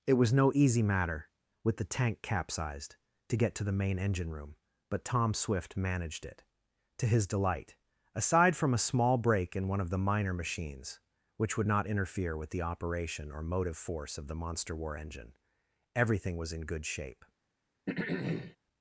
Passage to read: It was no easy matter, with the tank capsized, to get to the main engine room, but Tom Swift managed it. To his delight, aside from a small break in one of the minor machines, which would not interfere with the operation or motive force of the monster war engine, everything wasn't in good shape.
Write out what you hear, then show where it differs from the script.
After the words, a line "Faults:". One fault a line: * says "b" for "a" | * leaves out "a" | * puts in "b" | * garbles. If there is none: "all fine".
It was no easy matter, with the tank capsized, to get to the main engine room, but Tom Swift managed it. To his delight, aside from a small break in one of the minor machines, which would not interfere with the operation or motive force of the monster war engine, everything was in good shape.
Faults:
* says "was" for "wasn't"